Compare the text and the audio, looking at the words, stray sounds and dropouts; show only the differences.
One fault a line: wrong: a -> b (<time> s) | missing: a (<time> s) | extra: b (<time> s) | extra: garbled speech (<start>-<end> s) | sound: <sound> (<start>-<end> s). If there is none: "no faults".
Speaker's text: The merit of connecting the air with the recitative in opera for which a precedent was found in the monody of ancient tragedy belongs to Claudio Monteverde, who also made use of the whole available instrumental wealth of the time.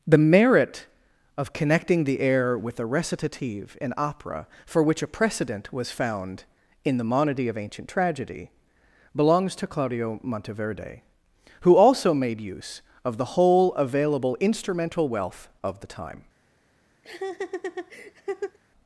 sound: laugh (17.0-18.6 s)